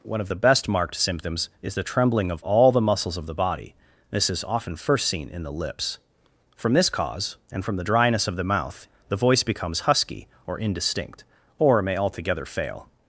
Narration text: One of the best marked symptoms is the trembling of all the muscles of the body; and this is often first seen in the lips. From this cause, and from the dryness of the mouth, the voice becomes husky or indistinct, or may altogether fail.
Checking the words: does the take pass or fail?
fail